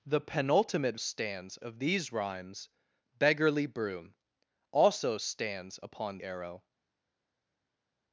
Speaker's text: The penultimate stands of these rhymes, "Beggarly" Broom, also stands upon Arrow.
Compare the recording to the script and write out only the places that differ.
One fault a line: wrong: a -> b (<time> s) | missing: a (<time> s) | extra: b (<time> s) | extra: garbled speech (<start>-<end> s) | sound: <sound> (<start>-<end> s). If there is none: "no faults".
no faults